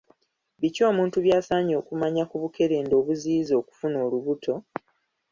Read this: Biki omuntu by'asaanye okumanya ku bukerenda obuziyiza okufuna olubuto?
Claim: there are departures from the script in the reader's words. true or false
false